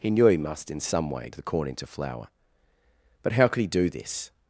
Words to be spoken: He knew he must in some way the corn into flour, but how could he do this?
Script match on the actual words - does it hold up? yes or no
yes